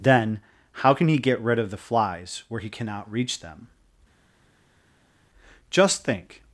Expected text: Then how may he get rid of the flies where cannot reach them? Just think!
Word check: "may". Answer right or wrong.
wrong